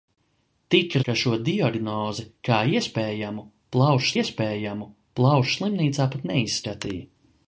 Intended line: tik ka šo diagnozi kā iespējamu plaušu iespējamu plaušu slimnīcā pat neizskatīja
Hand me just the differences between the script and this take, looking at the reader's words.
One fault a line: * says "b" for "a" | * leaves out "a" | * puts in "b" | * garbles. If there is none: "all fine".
all fine